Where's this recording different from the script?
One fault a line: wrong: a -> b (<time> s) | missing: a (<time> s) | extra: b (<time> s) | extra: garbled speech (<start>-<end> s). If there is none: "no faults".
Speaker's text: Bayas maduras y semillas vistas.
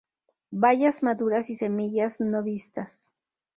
extra: no (2.2 s)